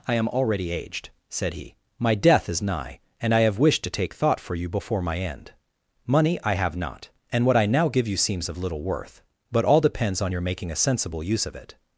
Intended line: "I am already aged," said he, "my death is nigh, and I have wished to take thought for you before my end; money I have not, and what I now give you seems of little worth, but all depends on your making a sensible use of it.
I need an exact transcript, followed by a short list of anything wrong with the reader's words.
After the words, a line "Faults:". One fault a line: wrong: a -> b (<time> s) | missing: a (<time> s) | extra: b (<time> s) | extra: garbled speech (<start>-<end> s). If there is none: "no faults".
"I am already aged," said he, "my death is nigh, and I have wished to take thought for you before my end; money I have not, and what I now give you seems of little worth, but all depends on your making a sensible use of it.
Faults:
no faults